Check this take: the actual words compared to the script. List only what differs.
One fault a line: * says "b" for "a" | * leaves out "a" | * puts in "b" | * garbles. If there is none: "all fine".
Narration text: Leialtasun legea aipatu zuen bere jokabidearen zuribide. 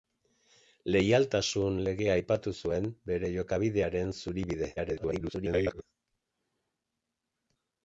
* garbles